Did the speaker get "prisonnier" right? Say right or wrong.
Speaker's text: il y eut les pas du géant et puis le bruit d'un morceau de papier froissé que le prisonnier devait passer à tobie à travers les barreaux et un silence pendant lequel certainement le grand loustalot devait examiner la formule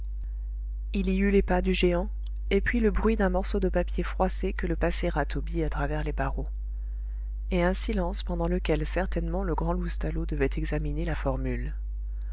wrong